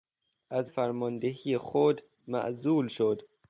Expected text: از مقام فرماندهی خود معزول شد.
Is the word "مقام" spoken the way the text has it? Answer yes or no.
no